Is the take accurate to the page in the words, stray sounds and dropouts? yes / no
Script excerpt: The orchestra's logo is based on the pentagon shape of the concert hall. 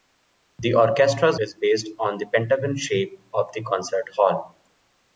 no